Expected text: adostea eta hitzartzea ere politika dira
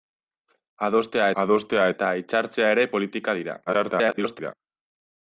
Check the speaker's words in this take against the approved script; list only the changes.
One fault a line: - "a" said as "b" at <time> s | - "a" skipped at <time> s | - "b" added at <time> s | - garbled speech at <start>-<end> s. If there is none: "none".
- "adostea" added at 1.4 s
- garbled speech at 3.7-4.5 s